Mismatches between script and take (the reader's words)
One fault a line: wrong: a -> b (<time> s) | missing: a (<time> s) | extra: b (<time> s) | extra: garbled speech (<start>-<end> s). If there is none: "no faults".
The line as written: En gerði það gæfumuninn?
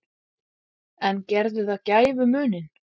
no faults